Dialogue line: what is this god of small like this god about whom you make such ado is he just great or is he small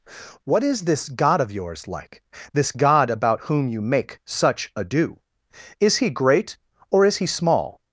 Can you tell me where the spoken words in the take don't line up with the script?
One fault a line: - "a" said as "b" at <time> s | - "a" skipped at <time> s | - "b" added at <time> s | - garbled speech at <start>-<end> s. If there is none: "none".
- "small" said as "yours" at 1.5 s
- "just" skipped at 6.1 s